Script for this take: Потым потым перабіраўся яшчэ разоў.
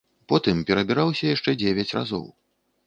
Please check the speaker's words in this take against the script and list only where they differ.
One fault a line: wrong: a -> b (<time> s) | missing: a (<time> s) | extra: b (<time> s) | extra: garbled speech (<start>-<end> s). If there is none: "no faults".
missing: потым (0.6 s)
extra: дзевяць (1.6 s)